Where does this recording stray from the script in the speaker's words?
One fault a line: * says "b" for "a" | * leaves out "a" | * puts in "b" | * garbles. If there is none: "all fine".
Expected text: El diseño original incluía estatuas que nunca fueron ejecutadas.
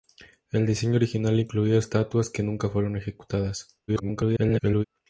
* garbles